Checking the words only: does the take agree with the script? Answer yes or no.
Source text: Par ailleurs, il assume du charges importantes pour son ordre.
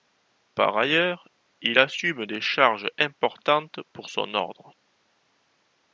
no